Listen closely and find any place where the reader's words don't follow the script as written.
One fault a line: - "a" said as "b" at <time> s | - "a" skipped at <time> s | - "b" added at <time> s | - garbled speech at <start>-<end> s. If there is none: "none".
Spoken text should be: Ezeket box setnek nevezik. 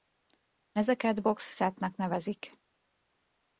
none